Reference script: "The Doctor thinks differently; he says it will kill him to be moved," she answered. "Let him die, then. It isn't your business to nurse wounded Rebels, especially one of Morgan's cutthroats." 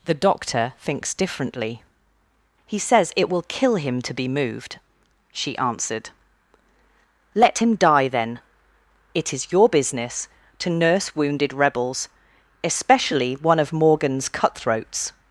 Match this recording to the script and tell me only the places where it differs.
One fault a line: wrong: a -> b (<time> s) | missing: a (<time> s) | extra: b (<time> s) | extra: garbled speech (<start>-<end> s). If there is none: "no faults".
wrong: isn't -> is (9.3 s)